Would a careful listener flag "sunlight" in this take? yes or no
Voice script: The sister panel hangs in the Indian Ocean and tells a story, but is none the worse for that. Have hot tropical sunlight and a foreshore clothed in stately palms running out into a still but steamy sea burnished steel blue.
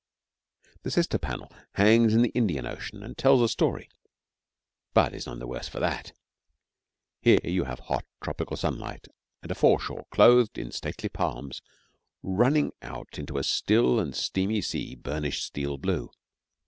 no